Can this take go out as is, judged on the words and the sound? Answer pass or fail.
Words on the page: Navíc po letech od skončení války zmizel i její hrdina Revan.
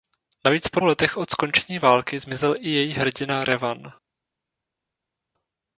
pass